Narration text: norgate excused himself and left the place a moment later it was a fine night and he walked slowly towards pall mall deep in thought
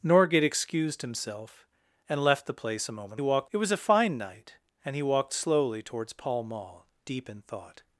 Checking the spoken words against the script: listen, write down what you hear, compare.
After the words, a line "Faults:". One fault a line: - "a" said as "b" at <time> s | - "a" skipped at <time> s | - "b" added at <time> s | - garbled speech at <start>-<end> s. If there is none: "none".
norgate excused himself and left the place a moment walked it was a fine night and he walked slowly towards pall mall deep in thought
Faults:
- "later" said as "walked" at 3.2 s